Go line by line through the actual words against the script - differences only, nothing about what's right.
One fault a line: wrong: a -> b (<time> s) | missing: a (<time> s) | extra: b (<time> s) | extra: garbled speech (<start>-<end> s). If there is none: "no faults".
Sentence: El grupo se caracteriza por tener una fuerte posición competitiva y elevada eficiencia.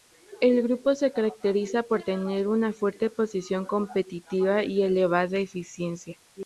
no faults